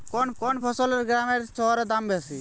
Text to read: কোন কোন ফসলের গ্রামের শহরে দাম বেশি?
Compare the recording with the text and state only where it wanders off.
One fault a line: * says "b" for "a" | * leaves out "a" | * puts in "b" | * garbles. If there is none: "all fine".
all fine